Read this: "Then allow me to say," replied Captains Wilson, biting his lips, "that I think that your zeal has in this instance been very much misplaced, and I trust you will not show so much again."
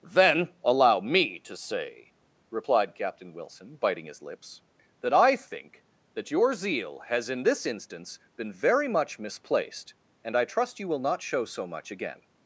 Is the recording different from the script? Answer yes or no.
yes